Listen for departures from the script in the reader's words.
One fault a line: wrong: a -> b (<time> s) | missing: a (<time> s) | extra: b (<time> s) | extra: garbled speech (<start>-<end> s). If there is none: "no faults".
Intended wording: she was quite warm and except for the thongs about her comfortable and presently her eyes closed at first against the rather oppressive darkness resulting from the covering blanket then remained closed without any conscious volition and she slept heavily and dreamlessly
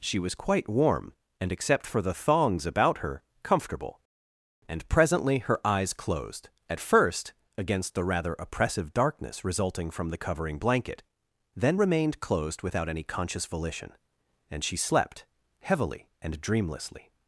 no faults